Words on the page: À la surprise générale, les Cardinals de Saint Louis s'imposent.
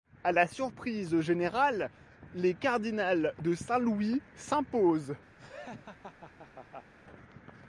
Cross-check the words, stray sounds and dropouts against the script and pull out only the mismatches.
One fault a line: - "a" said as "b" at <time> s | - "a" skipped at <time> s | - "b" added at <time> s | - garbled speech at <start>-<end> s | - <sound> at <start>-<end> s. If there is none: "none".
- laugh at 5.4-6.9 s